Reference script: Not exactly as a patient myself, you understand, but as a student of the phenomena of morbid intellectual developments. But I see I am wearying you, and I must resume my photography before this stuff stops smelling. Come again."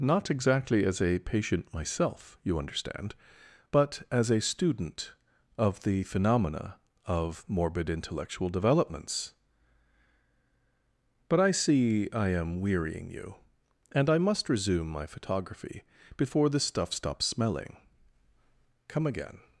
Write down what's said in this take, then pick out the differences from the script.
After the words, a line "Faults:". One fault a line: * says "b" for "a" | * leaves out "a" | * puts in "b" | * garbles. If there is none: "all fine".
Not exactly as a patient myself, you understand, but as a student of the phenomena of morbid intellectual developments. But I see I am wearying you, and I must resume my photography before this stuff stops smelling. Come again."
Faults:
all fine